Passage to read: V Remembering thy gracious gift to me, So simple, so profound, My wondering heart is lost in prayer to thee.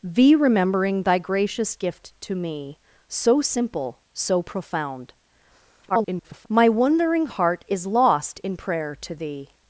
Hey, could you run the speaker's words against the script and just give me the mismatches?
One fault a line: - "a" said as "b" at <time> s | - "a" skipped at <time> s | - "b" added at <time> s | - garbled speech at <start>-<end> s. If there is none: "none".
- garbled speech at 5.9-6.5 s